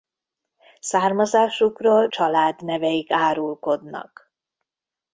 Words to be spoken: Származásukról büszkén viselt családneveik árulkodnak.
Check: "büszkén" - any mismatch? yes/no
yes